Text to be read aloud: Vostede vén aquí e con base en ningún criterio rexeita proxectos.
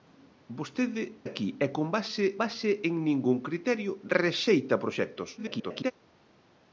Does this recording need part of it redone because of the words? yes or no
yes